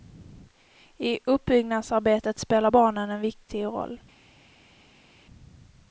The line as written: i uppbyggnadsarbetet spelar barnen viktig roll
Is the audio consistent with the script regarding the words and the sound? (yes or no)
no